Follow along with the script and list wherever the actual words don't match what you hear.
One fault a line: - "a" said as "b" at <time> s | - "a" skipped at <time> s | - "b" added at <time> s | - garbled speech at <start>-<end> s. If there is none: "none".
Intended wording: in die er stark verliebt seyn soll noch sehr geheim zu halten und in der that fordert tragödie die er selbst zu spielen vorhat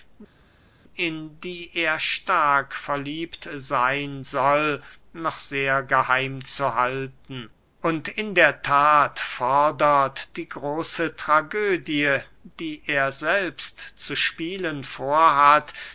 - "die große" added at 10.3 s